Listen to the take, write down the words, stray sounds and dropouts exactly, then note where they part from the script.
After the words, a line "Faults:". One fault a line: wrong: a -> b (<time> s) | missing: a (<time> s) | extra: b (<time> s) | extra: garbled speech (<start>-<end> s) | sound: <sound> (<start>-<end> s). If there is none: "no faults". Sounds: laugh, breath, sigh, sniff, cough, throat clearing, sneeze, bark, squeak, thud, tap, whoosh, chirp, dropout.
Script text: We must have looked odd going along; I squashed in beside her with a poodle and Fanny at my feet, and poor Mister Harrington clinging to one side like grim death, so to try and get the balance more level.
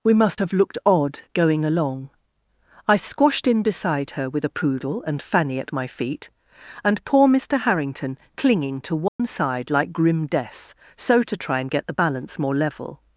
We must have looked odd going along; I squashed in beside her with a poodle and Fanny at my feet, and poor Mister Harrington clinging to one side like grim death, so to try and get the balance more level.
Faults:
sound: dropout (9.1-9.2 s)